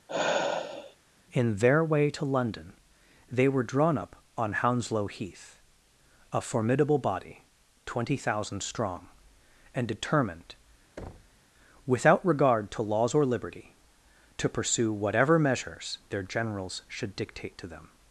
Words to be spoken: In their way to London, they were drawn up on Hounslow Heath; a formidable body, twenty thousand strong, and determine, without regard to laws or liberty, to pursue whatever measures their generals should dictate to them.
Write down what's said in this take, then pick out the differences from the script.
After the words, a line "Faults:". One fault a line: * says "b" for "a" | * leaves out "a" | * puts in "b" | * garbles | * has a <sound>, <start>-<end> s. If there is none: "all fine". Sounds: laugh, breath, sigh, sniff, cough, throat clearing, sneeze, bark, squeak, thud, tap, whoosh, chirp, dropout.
In their way to London, they were drawn up on Hounslow Heath; a formidable body, twenty thousand strong, and determined, without regard to laws or liberty, to pursue whatever measures their generals should dictate to them.
Faults:
* has a sigh, 0.1-1.0 s
* says "determined" for "determine"
* has a thud, 11.0-11.4 s